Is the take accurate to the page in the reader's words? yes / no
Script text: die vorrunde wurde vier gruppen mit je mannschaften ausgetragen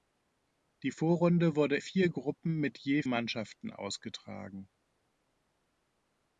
yes